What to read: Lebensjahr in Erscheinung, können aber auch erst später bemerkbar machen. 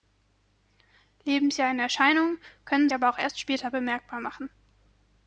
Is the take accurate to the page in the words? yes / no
yes